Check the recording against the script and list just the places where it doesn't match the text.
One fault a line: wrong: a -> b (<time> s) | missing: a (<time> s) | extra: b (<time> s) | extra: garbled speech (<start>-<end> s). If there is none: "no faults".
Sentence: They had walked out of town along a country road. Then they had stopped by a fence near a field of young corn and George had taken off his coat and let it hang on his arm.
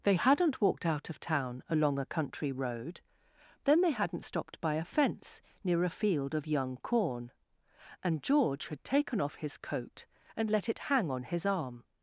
wrong: had -> hadn't (0.1 s)
wrong: had -> hadn't (3.9 s)